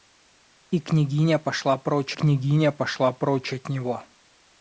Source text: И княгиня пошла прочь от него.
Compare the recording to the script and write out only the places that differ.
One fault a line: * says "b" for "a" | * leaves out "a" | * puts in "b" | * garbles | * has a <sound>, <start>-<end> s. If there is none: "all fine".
* puts in "княгиня пошла прочь"